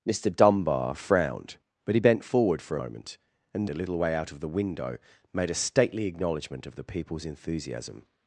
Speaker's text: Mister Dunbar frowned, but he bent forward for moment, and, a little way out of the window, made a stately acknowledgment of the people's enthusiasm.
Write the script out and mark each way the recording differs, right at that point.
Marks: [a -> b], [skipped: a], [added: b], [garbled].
Mister Dunbar frowned, but he bent forward for moment, and, a little way out of the window, made a stately acknowledgment of the people's enthusiasm.